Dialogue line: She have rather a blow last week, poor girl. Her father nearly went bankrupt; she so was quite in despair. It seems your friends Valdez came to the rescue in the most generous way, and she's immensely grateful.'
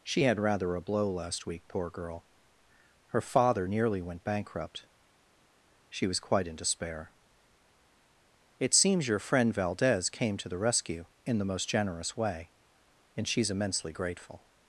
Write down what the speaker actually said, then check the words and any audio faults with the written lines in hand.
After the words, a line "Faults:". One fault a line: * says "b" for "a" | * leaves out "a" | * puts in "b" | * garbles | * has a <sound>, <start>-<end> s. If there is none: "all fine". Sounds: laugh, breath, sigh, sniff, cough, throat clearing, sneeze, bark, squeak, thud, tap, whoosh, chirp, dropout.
She had rather a blow last week, poor girl. Her father nearly went bankrupt; she was quite in despair. It seems your friend Valdez came to the rescue in the most generous way, and she's immensely grateful.'
Faults:
* says "had" for "have"
* leaves out "so"
* says "friend" for "friends"